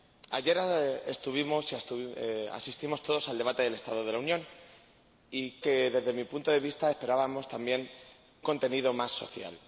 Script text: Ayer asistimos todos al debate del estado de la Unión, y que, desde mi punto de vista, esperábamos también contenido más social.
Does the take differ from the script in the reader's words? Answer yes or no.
no